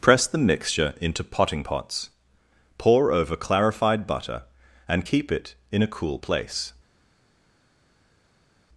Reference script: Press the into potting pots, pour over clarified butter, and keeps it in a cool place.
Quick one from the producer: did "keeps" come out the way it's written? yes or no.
no